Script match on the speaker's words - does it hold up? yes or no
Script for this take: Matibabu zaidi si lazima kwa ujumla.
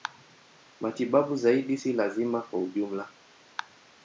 yes